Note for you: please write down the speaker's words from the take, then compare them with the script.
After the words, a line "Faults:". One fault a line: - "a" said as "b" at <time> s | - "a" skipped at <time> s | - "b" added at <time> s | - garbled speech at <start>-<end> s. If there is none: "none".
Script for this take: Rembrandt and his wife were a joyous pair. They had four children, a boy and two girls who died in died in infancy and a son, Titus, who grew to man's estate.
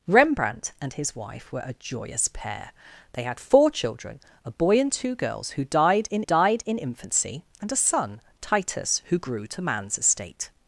Rembrandt and his wife were a joyous pair. They had four children, a boy and two girls who died in died in infancy and a son, Titus, who grew to man's estate.
Faults:
none